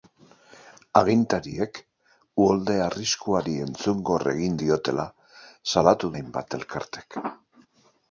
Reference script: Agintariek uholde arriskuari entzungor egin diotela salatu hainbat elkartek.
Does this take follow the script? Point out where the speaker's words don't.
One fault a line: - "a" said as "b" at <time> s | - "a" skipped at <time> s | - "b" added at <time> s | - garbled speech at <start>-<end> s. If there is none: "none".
none